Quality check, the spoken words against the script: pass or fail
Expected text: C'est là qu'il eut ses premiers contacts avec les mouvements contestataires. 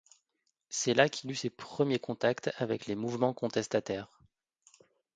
pass